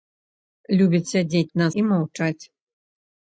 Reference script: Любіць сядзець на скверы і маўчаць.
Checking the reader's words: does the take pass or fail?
fail